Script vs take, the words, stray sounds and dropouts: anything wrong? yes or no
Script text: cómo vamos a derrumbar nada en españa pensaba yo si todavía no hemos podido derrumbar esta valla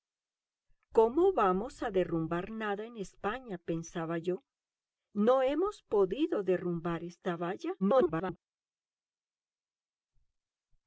yes